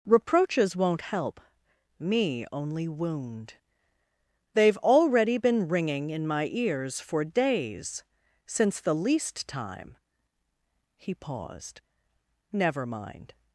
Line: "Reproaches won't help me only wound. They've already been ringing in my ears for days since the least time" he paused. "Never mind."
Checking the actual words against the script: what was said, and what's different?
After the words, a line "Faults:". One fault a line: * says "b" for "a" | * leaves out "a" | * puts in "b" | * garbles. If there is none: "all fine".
"Reproaches won't help me only wound. They've already been ringing in my ears for days since the least time" he paused. "Never mind."
Faults:
all fine